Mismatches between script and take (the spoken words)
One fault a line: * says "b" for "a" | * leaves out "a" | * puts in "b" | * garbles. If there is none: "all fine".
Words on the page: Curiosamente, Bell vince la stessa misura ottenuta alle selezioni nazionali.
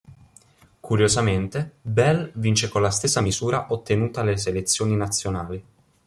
* puts in "con"